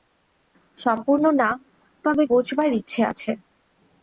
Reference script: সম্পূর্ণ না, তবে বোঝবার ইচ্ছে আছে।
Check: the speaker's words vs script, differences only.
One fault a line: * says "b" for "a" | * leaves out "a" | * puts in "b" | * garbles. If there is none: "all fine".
all fine